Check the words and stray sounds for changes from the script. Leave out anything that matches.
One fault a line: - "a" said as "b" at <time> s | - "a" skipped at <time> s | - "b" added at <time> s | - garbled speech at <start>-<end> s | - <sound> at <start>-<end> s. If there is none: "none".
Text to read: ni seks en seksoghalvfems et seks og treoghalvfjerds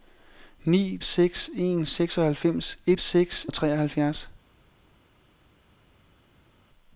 none